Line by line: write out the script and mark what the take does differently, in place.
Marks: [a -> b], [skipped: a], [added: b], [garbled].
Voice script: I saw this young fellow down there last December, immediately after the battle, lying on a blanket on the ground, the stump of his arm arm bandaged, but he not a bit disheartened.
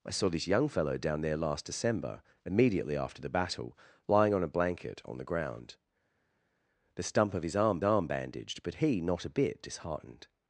I saw this young fellow down there last December, immediately after the battle, lying on a blanket on the ground, the stump of his arm arm bandaged, but he not a bit disheartened.